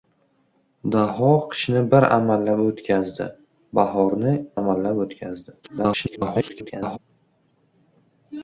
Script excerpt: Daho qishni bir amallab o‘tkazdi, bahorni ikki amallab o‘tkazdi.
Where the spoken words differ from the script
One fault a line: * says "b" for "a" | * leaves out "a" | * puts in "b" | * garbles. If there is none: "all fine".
* leaves out "ikki"
* garbles